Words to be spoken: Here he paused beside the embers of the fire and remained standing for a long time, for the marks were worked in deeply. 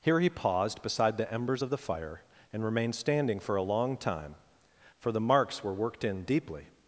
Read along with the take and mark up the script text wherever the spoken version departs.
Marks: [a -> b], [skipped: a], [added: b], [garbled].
Here he paused beside the embers of the fire and remained standing for a long time, for the marks were worked in deeply.